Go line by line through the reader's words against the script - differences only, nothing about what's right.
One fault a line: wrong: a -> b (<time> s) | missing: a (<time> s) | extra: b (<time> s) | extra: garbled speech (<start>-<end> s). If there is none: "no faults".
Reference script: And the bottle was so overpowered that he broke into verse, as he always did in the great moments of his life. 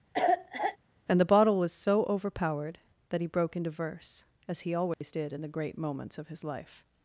no faults